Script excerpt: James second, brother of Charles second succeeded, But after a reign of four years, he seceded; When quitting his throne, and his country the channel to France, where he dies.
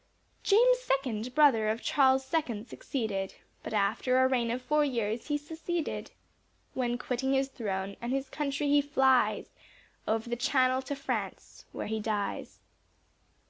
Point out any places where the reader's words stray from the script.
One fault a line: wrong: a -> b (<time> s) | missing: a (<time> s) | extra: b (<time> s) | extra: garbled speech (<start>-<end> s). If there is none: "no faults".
extra: he flies Over (8.7 s)